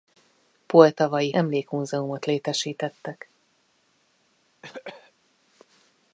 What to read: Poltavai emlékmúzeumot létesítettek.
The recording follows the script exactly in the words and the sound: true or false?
false